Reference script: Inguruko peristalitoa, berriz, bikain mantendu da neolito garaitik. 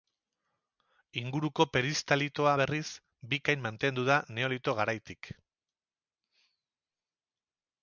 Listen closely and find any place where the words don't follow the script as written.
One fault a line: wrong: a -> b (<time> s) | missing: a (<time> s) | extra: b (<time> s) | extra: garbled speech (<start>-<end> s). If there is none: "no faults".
no faults